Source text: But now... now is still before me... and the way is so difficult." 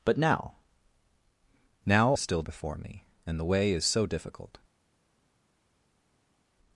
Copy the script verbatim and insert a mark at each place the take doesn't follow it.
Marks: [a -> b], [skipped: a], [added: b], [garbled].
But now... now is still before me... and the way is so difficult."